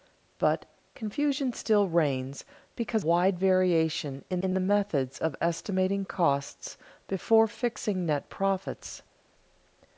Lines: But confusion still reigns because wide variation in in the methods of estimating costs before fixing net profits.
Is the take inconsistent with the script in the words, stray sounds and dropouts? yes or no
no